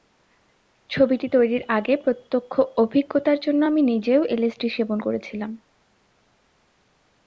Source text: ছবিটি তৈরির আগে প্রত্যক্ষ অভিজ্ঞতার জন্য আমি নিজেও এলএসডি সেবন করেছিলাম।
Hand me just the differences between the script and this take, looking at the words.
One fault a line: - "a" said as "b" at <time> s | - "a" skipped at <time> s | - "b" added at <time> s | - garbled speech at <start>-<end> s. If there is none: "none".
none